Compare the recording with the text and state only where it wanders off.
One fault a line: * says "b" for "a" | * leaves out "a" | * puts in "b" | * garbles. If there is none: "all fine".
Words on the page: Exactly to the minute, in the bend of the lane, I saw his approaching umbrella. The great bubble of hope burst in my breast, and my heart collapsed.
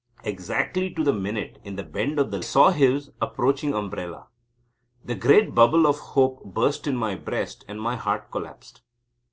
* leaves out "lane I"